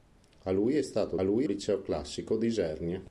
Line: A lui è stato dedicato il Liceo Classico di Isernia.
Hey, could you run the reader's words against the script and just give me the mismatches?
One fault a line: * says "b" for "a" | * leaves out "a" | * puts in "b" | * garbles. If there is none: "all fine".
* says "lui" for "dedicato"